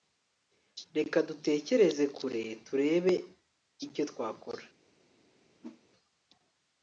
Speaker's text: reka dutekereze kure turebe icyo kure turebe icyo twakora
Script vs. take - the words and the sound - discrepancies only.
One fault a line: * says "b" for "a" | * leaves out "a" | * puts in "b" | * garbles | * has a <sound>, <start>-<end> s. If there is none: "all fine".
* leaves out "kure turebe icyo"
* has a whoosh, 5.6-5.8 s